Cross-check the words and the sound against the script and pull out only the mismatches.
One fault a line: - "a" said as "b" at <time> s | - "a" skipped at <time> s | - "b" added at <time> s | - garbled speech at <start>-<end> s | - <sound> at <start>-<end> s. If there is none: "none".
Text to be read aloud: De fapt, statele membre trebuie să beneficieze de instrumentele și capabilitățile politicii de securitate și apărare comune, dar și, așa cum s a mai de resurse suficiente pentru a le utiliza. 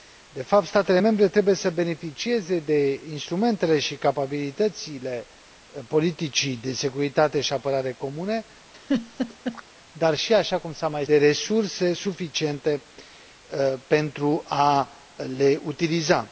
- laugh at 8.7-9.6 s